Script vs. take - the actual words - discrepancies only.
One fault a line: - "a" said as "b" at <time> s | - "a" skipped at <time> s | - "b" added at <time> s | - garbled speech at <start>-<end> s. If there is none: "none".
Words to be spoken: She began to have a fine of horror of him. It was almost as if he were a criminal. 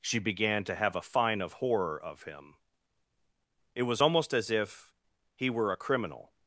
none